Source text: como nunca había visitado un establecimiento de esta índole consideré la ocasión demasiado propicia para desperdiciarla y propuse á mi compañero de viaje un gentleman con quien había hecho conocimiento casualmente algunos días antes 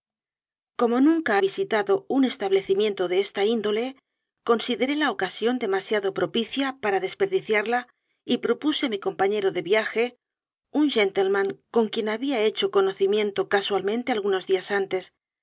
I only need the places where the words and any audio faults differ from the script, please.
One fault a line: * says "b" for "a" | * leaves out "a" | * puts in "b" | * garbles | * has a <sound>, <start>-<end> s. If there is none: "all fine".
* leaves out "había"